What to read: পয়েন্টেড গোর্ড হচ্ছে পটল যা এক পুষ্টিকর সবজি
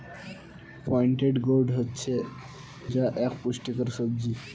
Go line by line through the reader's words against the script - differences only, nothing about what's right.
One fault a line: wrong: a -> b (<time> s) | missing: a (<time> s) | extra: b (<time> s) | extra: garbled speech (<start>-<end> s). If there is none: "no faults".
missing: পটল (2.1 s)